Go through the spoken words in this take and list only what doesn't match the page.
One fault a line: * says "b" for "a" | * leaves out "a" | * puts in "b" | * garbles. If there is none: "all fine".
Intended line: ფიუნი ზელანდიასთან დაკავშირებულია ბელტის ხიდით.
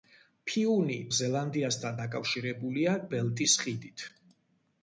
all fine